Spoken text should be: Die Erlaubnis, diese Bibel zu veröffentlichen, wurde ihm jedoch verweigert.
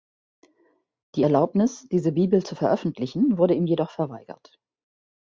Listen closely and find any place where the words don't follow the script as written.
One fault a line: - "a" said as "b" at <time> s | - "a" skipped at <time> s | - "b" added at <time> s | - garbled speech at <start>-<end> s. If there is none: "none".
none